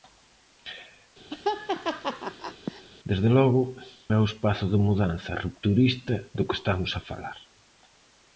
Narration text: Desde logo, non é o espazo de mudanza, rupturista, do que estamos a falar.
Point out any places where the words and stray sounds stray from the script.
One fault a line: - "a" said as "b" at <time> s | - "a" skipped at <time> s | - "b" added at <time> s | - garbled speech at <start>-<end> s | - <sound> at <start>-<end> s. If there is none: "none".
- laugh at 1.3-2.8 s
- "non" skipped at 3.6 s